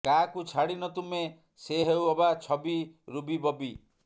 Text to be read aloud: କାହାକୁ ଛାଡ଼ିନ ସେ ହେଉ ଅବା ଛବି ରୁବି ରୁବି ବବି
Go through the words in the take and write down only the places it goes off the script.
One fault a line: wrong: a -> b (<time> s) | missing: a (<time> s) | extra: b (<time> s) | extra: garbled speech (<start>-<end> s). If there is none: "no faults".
extra: ତୁମେ (0.9 s)
missing: ରୁବି (3.4 s)